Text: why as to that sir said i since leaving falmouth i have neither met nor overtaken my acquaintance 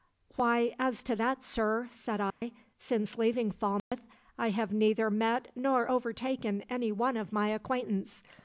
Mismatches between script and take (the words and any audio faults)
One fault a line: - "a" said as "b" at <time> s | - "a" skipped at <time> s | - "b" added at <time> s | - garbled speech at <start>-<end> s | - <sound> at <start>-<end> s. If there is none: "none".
- dropout at 2.3-2.4 s
- dropout at 3.8-3.9 s
- "any one of" added at 6.7 s